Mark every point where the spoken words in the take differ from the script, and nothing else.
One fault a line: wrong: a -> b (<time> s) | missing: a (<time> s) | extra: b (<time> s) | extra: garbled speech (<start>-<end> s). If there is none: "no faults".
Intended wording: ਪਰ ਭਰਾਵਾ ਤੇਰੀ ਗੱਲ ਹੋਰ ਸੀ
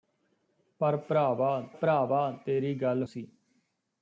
extra: ਭਰਾਵਾ (1.7 s)
missing: ਹੋਰ (3.0 s)